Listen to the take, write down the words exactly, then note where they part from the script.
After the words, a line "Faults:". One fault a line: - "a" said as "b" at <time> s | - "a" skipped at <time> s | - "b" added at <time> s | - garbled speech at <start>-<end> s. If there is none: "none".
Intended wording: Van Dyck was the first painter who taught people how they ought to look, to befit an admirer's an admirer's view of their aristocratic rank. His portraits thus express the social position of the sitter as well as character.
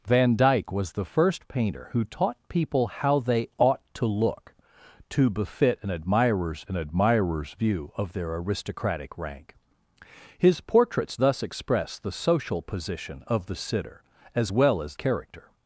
Van Dyck was the first painter who taught people how they ought to look, to befit an admirer's an admirer's view of their aristocratic rank. His portraits thus express the social position of the sitter as well as character.
Faults:
none